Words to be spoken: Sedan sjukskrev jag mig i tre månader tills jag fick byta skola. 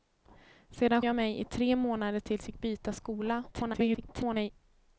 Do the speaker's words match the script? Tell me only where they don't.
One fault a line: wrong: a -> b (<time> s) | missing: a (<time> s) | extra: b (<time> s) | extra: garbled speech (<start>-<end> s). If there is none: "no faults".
missing: sjukskrev (1.0 s)
missing: jag (2.5 s)
extra: garbled speech (3.5-4.5 s)